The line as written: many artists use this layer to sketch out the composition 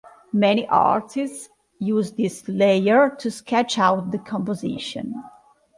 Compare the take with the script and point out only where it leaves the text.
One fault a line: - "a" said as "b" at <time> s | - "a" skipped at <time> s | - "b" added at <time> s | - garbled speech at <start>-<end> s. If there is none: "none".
none